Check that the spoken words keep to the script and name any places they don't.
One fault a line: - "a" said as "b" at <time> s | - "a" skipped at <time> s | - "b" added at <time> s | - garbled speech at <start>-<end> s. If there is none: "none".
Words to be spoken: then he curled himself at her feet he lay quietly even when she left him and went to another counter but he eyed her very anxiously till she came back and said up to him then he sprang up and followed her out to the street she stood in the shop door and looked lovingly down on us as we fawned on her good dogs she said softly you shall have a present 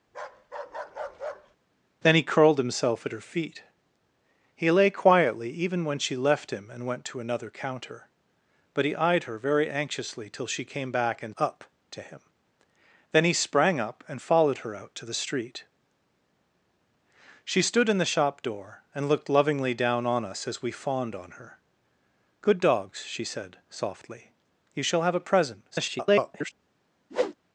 - "said" skipped at 11.3 s
- garbled speech at 25.7-26.5 s